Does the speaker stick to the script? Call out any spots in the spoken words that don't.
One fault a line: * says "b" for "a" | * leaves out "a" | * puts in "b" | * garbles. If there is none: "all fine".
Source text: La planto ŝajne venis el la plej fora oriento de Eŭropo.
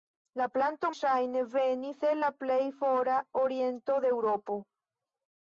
all fine